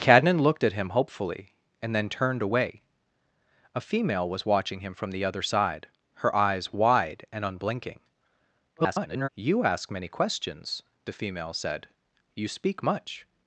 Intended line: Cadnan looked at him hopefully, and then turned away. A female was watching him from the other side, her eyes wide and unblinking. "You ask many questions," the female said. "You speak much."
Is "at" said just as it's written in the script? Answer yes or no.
yes